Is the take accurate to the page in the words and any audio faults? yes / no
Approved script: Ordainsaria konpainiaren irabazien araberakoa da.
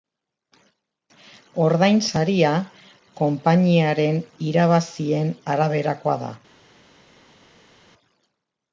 yes